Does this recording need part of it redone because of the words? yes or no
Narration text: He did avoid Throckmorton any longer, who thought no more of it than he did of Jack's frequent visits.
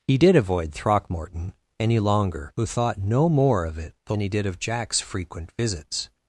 no